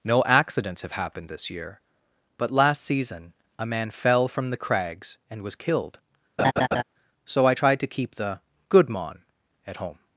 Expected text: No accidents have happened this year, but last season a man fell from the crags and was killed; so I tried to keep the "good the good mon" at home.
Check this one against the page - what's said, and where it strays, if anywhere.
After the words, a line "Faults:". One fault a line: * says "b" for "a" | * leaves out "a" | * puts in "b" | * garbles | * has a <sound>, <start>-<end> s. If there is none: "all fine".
No accidents have happened this year, but last season a man fell from the crags and was killed; so I tried to keep the "good mon" at home.
Faults:
* has a laugh, 6.4-6.8 s
* leaves out "the good"